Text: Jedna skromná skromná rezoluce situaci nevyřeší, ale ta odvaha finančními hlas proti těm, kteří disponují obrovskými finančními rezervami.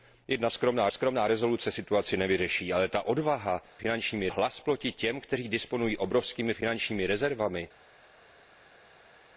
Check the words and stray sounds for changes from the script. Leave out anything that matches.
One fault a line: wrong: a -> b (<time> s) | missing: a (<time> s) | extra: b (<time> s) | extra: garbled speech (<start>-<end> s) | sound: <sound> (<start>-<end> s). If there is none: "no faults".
no faults